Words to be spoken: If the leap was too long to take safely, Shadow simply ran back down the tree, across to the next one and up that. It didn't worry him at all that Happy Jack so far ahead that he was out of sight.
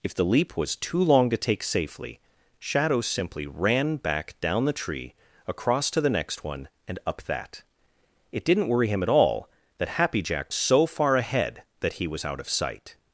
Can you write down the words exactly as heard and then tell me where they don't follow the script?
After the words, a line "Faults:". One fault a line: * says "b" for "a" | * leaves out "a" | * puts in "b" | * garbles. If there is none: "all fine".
If the leap was too long to take safely, Shadow simply ran back down the tree, across to the next one and up that. It didn't worry him at all that Happy Jack so far ahead that he was out of sight.
Faults:
all fine